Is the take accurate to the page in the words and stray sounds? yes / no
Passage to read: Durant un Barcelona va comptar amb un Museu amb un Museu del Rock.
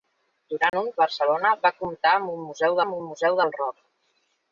no